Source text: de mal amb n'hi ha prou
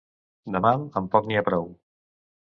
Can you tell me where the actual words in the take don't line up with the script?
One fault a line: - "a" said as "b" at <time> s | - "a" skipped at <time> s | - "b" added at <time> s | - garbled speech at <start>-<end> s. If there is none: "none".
- "poc" added at 1.2 s